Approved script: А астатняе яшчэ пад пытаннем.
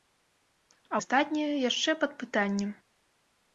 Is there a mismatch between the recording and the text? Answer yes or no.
no